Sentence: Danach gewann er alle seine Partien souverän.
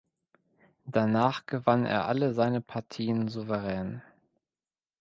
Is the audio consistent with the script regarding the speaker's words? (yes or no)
yes